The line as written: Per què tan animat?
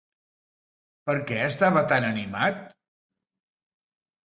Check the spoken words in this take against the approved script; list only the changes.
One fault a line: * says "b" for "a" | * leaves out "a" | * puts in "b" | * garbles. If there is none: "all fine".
* puts in "estava"